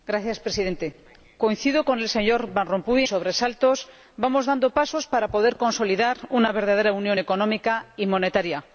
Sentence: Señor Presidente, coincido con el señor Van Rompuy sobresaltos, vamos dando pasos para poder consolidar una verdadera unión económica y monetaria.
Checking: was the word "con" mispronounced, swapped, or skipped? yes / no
no